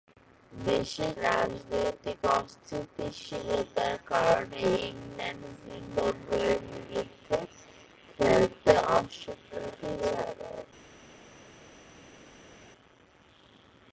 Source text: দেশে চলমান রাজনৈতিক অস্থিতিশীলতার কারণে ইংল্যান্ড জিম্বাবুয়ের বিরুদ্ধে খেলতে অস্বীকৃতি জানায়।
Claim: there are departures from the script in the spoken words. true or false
true